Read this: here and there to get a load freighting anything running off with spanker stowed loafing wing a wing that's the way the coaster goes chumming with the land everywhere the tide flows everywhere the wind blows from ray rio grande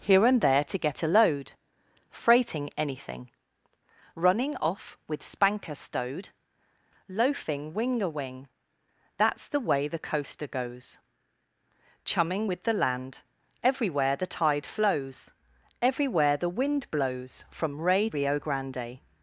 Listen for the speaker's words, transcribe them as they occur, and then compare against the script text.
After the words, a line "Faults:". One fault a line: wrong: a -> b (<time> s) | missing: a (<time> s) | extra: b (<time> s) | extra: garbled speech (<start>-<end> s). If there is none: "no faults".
here and there to get a load freighting anything running off with spanker stowed loafing wing a wing that's the way the coaster goes chumming with the land everywhere the tide flows everywhere the wind blows from ray rio grande
Faults:
no faults